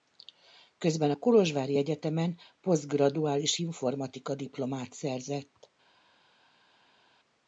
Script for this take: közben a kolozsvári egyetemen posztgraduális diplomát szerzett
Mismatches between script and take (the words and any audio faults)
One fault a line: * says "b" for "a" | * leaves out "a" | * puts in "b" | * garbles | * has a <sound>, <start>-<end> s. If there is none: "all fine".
* puts in "informatika"